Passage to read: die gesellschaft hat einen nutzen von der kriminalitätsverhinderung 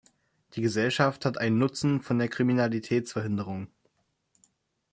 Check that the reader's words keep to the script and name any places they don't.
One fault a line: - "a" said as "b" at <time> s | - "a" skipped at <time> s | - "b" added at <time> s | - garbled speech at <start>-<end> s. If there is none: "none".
none